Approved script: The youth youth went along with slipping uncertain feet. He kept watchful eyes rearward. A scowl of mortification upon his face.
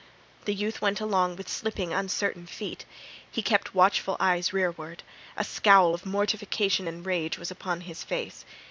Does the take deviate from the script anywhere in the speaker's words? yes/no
yes